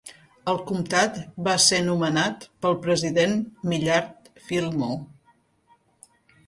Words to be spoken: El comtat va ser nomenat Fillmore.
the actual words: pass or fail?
fail